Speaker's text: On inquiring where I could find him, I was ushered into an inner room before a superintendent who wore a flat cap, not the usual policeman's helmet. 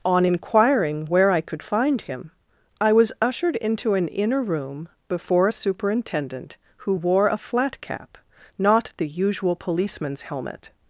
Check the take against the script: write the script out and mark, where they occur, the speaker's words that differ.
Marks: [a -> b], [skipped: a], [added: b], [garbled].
On inquiring where I could find him, I was ushered into an inner room before a superintendent who wore a flat cap, not the usual policeman's helmet.